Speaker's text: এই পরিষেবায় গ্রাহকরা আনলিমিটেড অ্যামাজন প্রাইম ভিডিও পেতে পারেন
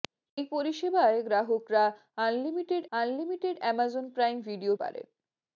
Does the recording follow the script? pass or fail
fail